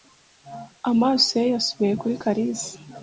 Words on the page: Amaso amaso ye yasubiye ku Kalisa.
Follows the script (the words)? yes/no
no